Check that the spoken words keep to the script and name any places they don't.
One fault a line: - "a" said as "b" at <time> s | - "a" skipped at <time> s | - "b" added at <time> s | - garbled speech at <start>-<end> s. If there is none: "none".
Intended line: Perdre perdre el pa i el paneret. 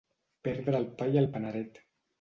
- "perdre" skipped at 0.8 s